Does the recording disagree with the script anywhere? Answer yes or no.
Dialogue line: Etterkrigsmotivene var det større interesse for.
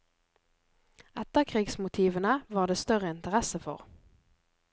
no